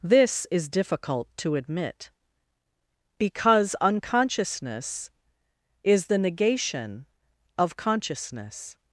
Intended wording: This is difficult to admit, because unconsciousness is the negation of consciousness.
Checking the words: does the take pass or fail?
pass